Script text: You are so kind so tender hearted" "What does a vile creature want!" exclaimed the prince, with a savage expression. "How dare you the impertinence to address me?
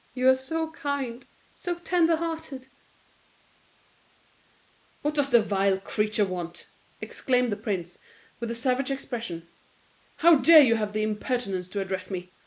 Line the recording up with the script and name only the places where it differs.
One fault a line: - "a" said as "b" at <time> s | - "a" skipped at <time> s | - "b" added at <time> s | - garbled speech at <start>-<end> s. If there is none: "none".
- "a" said as "the" at 5.3 s
- "have" added at 10.8 s